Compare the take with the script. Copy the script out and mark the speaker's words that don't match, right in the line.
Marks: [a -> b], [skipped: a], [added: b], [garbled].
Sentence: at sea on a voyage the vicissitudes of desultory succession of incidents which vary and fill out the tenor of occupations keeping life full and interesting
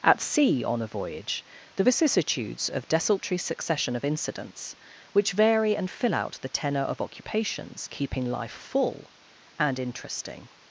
at sea on a voyage the vicissitudes of desultory succession of incidents which vary and fill out the tenor of occupations keeping life full and interesting